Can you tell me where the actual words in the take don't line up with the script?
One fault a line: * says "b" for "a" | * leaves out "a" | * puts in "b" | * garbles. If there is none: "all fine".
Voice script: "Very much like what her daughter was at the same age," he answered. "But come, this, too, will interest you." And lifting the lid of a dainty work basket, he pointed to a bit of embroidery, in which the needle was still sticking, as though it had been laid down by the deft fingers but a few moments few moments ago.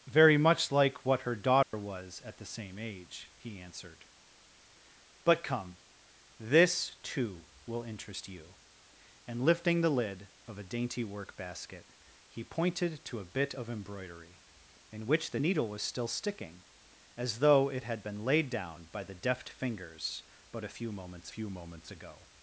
all fine